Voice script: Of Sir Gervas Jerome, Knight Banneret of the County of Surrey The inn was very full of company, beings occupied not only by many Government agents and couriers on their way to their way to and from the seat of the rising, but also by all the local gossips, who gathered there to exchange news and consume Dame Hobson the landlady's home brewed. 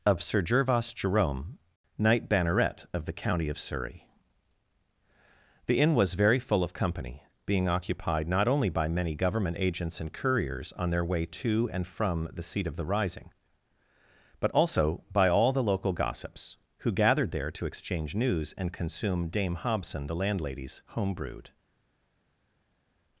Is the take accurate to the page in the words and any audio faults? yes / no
no